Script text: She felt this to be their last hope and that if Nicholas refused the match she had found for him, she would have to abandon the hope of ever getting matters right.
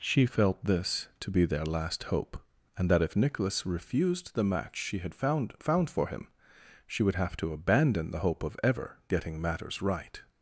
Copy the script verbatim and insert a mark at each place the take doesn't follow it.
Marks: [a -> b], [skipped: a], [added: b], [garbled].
She felt this to be their last hope and that if Nicholas refused the match she had found [added: found] for him, she would have to abandon the hope of ever getting matters right.